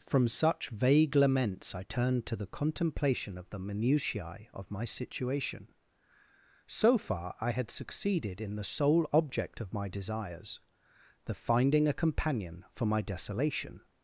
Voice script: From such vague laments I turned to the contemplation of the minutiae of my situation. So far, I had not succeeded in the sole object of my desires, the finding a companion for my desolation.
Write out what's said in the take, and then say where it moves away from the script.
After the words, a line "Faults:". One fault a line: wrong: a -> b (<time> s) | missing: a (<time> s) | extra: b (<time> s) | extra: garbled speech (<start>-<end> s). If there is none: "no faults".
From such vague laments I turned to the contemplation of the minutiae of my situation. So far, I had succeeded in the sole object of my desires, the finding a companion for my desolation.
Faults:
missing: not (7.7 s)